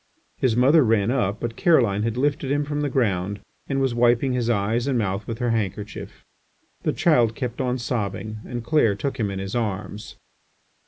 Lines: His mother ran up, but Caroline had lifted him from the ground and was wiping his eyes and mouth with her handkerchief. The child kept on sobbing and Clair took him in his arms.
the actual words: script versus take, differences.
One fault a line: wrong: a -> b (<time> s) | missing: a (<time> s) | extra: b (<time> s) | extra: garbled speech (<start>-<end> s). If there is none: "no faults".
no faults